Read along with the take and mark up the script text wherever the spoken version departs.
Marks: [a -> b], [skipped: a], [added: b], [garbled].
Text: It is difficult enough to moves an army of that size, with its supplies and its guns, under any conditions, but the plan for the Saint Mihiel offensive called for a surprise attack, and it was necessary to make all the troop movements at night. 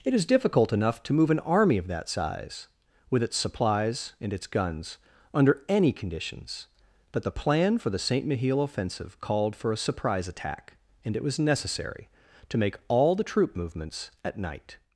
It is difficult enough to [moves -> move] an army of that size, with its supplies and its guns, under any conditions, but the plan for the Saint Mihiel offensive called for a surprise attack, and it was necessary to make all the troop movements at night.